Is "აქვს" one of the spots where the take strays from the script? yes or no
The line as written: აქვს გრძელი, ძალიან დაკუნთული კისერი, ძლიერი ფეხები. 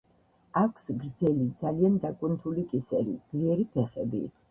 no